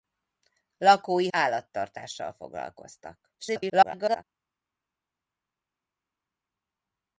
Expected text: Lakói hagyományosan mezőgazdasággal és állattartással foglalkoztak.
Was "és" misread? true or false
true